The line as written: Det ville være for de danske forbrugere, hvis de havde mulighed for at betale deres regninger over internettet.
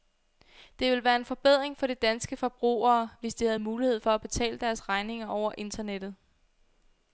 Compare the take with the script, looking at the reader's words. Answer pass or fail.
fail